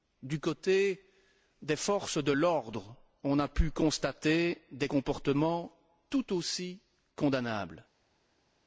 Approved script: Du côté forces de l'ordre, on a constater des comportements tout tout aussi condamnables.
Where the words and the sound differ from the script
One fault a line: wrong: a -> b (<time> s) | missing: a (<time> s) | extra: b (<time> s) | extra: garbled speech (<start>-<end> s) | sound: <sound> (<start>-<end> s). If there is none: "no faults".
extra: des (1.6 s)
extra: pu (3.5 s)
missing: tout (6.3 s)